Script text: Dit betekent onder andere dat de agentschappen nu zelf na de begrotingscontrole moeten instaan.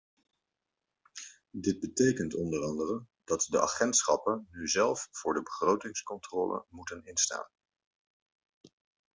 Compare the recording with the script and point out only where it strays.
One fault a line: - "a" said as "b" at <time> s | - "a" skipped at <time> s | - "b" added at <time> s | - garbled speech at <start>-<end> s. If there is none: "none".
- "na" said as "voor" at 5.1 s